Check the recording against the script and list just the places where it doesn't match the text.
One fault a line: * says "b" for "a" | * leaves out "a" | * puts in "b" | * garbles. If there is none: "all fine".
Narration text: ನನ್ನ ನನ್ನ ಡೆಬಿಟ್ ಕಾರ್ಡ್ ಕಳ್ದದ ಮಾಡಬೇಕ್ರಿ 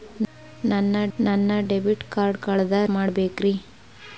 all fine